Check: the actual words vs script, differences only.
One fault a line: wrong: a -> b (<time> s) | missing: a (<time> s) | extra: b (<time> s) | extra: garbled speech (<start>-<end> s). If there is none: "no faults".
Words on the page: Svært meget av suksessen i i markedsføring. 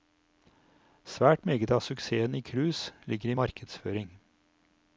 extra: cruise ligger (2.4 s)